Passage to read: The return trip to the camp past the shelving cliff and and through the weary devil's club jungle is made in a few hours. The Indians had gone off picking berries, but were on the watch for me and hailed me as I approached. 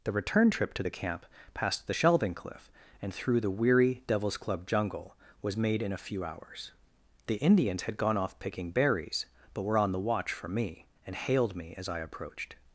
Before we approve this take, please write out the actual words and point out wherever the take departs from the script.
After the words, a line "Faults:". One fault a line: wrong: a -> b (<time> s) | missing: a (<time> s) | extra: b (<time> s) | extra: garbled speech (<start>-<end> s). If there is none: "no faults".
The return trip to the camp past the shelving cliff and through the weary devil's club jungle was made in a few hours. The Indians had gone off picking berries, but were on the watch for me and hailed me as I approached.
Faults:
missing: and (3.1 s)
wrong: is -> was (5.4 s)